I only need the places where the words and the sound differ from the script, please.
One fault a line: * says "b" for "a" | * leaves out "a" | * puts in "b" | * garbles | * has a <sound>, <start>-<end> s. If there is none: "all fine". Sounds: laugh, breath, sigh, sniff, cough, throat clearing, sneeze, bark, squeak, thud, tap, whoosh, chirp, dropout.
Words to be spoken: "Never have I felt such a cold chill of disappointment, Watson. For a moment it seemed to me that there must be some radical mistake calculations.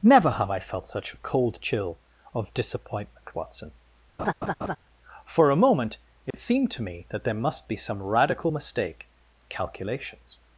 * has a laugh, 4.2-4.8 s
* has a dropout, 6.3-6.3 s